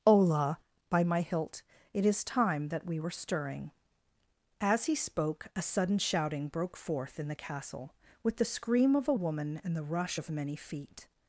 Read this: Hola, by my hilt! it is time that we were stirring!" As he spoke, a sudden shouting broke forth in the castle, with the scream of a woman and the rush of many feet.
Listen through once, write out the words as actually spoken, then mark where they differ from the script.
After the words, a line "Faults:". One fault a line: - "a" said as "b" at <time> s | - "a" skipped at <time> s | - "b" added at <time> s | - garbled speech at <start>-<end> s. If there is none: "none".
Hola, by my hilt! it is time that we were stirring!" As he spoke, a sudden shouting broke forth in the castle, with the scream of a woman and the rush of many feet.
Faults:
none